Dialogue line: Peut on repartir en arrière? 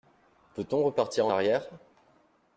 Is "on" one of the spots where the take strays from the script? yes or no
no